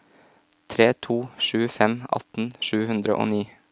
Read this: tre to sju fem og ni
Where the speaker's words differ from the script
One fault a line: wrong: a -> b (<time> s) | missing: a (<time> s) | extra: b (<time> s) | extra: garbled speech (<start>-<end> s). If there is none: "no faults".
extra: atten sju hundre (2.2 s)